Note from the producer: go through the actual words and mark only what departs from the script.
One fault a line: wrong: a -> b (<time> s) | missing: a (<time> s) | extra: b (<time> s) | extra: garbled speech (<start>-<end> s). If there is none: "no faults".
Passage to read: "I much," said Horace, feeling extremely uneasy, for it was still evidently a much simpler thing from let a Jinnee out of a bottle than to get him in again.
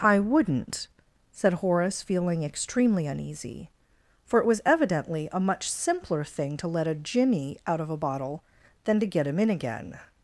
wrong: much -> wouldn't (0.2 s)
missing: still (4.6 s)
wrong: from -> to (6.6 s)